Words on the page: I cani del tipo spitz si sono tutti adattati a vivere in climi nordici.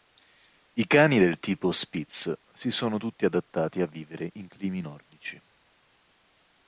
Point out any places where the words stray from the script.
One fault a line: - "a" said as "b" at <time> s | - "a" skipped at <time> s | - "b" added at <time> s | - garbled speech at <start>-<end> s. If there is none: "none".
none